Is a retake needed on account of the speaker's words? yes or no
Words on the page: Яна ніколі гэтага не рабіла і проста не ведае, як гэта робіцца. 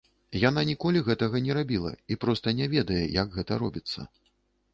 no